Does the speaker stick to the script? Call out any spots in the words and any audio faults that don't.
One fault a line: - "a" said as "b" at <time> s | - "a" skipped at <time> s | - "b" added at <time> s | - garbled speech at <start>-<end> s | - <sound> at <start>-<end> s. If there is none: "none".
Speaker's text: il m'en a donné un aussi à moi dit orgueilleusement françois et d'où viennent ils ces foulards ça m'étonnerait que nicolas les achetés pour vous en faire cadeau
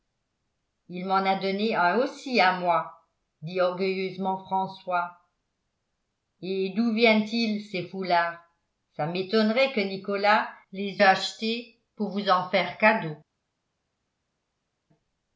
none